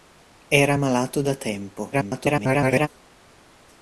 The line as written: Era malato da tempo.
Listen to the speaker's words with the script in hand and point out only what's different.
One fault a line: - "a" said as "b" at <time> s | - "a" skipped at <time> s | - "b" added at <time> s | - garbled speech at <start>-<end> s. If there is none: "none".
- garbled speech at 1.9-2.9 s